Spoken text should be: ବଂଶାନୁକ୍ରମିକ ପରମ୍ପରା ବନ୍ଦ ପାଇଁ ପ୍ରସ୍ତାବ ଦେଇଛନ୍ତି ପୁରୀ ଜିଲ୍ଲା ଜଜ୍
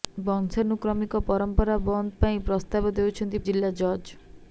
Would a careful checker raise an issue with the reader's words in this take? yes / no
yes